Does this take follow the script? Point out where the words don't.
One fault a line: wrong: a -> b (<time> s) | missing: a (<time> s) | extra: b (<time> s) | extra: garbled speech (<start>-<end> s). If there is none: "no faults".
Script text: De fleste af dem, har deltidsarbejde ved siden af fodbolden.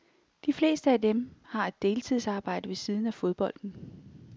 extra: et (1.7 s)